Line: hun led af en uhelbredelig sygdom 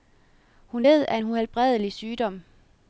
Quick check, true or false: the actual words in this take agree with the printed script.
true